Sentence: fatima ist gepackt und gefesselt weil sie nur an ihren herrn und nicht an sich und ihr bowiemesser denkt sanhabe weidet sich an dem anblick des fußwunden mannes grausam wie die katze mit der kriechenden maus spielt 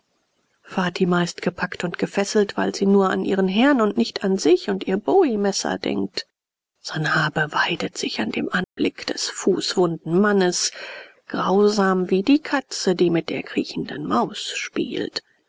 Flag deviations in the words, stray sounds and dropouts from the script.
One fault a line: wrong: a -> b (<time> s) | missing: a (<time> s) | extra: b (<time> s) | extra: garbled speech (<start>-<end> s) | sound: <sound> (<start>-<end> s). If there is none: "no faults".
sound: dropout (8.6-8.8 s)
extra: die (12.9 s)